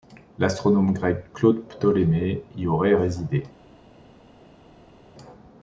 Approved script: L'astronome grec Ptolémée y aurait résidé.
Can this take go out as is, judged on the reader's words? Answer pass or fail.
fail